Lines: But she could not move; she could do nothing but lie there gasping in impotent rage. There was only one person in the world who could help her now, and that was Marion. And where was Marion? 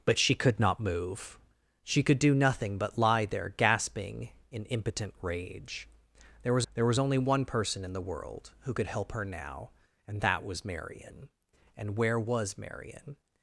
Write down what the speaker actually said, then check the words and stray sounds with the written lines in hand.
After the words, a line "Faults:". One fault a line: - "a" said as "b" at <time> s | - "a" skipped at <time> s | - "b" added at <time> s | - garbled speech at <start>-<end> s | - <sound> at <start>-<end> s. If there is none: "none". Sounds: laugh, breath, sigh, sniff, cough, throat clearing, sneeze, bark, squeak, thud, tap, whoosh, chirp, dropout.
But she could not move; she could do nothing but lie there gasping in impotent rage. There was there was only one person in the world who could help her now, and that was Marion. And where was Marion?
Faults:
- "there was" added at 6.7 s